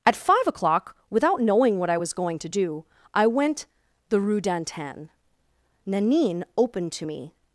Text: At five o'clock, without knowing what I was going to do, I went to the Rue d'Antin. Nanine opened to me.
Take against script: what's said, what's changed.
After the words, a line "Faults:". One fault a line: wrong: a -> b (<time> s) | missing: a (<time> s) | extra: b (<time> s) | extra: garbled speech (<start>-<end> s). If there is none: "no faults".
At five o'clock, without knowing what I was going to do, I went the Rue d'Antin. Nanine opened to me.
Faults:
missing: to (3.7 s)